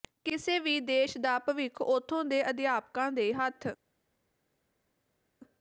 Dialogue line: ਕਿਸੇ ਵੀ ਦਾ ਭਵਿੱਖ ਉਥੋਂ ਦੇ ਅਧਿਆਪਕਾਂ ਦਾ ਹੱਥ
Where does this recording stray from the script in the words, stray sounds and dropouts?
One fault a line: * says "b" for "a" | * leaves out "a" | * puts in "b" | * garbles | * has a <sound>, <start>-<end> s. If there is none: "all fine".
* puts in "ਦੇਸ਼"
* says "ਦੇ" for "ਦਾ"